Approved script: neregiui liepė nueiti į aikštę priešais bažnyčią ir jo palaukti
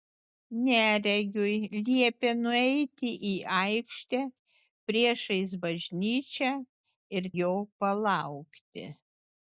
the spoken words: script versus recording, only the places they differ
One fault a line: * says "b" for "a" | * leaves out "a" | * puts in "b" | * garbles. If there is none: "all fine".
all fine